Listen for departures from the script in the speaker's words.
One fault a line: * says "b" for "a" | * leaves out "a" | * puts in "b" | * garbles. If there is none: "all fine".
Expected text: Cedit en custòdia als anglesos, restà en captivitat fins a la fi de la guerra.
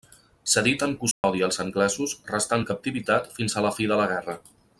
all fine